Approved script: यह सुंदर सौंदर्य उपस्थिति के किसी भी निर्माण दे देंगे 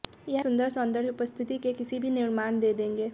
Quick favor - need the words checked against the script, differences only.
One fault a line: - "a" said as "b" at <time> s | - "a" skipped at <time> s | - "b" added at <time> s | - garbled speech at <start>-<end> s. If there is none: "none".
none